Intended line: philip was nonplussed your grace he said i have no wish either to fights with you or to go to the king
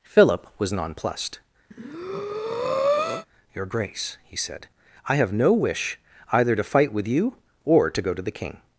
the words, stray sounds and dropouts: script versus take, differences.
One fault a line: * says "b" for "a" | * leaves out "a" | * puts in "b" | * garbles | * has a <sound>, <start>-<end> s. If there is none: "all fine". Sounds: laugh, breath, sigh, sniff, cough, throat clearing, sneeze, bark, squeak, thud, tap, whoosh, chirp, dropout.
* has a breath, 1.7-3.3 s
* says "fight" for "fights"